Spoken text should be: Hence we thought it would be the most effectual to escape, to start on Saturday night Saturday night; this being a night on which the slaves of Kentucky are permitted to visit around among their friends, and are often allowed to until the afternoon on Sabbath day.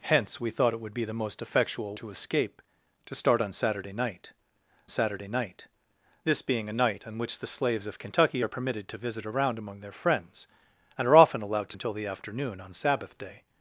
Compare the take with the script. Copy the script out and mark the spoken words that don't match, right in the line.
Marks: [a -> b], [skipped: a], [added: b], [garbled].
Hence we thought it would be the most effectual to escape, to start on Saturday night Saturday night; this being a night on which the slaves of Kentucky are permitted to visit around among their friends, and are often allowed to until the afternoon on Sabbath day.